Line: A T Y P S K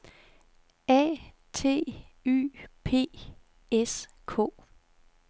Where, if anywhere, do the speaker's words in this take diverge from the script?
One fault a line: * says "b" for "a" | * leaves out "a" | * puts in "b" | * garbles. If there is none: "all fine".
all fine